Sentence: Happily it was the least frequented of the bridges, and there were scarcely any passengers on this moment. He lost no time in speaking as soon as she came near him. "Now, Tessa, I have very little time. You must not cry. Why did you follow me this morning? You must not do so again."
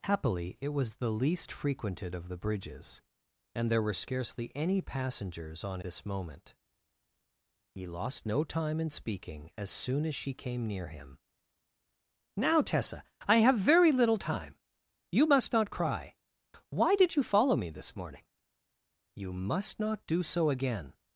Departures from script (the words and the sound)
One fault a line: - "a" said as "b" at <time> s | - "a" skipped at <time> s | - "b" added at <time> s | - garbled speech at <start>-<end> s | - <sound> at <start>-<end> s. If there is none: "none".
none